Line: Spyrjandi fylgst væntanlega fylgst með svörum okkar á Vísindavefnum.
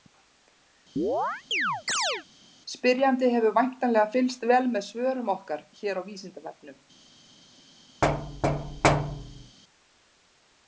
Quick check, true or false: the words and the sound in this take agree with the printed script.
false